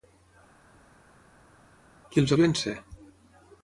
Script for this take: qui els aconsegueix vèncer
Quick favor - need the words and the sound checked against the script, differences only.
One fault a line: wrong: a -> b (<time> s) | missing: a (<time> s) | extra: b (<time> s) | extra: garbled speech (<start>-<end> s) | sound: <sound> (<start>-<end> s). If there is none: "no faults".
missing: aconsegueix (2.3 s)